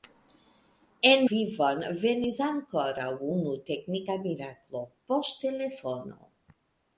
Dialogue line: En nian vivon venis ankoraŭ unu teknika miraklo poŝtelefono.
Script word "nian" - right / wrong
wrong